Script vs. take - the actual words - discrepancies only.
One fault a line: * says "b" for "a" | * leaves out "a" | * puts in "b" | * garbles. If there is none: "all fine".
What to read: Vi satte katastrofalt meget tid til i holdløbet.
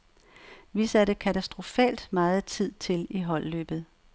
all fine